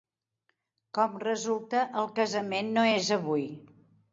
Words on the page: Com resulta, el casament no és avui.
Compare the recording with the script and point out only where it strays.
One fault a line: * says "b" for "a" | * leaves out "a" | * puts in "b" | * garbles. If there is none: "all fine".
all fine